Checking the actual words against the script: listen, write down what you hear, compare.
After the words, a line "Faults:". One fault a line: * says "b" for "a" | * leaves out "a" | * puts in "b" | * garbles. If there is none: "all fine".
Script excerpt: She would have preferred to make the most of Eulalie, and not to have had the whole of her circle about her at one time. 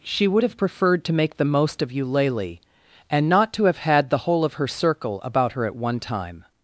She would have preferred to make the most of Eulalie, and not to have had the whole of her circle about her at one time.
Faults:
all fine